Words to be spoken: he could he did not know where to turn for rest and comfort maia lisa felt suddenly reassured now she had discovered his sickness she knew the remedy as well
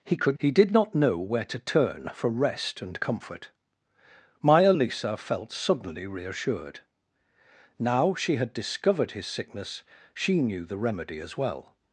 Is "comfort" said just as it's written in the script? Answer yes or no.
yes